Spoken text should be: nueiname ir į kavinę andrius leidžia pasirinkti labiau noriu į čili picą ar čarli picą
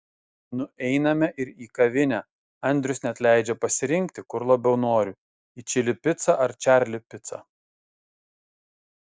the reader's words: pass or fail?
fail